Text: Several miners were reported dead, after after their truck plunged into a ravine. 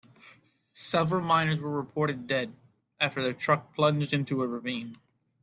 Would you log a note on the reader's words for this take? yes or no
yes